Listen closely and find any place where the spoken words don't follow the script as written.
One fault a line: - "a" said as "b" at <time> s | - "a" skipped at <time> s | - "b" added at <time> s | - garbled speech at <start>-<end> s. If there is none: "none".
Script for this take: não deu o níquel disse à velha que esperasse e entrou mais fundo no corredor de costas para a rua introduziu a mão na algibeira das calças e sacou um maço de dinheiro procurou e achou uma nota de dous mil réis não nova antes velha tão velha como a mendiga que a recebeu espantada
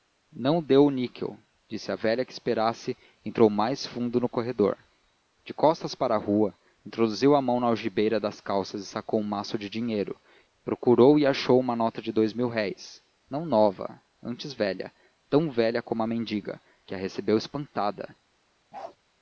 none